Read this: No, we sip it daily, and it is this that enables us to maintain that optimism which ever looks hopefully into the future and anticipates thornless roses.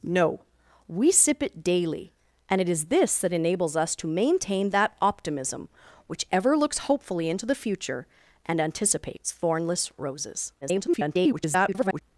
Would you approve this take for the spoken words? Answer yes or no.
no